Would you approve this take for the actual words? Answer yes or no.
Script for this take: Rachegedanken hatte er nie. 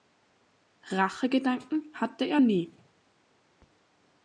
yes